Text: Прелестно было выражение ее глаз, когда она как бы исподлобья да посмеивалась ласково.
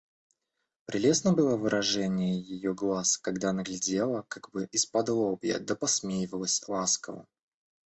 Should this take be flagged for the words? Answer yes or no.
yes